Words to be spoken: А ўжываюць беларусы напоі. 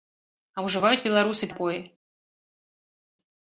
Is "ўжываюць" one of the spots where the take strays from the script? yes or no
no